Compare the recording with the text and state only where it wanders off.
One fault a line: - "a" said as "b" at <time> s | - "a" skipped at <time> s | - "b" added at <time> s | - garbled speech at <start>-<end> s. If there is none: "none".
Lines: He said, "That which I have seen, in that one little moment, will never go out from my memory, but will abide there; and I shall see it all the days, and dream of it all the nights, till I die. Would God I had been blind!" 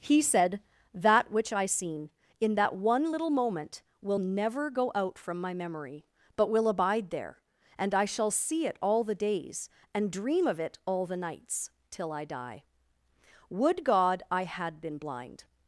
- "have" skipped at 1.7 s